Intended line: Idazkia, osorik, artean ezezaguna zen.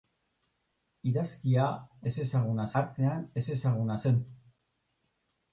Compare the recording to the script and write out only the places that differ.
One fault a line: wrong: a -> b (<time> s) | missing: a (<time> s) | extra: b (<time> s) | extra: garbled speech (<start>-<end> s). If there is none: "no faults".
wrong: osorik -> ezezaguna (2.1 s)